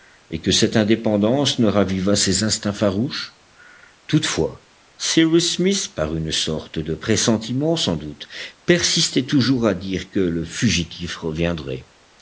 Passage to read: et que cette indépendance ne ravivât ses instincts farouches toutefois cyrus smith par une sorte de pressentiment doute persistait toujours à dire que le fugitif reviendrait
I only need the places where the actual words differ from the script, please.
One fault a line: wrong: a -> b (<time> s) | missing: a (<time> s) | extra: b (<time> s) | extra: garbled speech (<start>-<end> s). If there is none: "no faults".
extra: sans (7.8 s)